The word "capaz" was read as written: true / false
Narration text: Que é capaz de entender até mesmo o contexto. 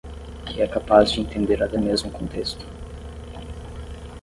true